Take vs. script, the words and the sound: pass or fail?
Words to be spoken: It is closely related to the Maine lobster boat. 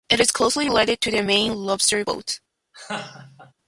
fail